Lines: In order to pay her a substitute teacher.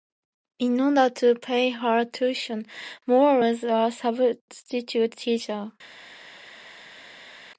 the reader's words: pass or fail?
fail